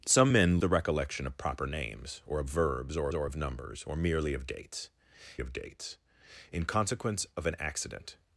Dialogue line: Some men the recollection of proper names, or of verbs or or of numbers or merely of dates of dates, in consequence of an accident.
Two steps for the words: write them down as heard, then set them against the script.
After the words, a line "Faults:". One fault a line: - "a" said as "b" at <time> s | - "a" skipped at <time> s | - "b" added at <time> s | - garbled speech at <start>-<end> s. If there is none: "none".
Some men the recollection of proper names, or of verbs or or of numbers or merely of dates of dates, in consequence of an accident.
Faults:
none